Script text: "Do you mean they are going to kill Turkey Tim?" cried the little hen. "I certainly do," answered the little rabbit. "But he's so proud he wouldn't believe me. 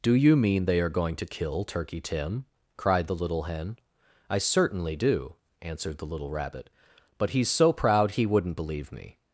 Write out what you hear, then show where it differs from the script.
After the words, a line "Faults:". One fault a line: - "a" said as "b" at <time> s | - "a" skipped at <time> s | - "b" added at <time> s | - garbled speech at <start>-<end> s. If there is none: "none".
"Do you mean they are going to kill Turkey Tim?" cried the little hen. "I certainly do," answered the little rabbit. "But he's so proud he wouldn't believe me.
Faults:
none